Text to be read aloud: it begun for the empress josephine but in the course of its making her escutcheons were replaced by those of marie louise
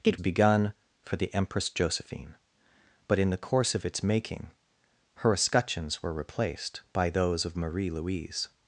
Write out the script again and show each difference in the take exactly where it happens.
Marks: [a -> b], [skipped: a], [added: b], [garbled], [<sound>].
it begun for the empress josephine but in the course of its making her escutcheons were replaced by those of marie louise